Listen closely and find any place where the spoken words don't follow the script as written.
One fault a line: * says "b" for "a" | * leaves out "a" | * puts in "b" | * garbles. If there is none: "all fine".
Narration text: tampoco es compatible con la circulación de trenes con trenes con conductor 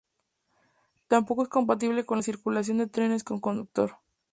* leaves out "trenes con"